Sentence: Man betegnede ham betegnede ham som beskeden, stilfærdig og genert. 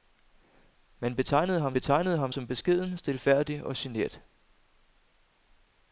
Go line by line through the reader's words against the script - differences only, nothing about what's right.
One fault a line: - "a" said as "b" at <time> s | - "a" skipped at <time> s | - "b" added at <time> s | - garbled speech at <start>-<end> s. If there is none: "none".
none